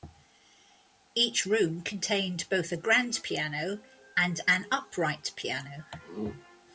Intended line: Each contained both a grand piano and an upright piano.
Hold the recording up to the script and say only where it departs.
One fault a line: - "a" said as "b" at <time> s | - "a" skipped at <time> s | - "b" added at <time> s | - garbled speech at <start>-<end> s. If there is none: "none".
- "room" added at 1.4 s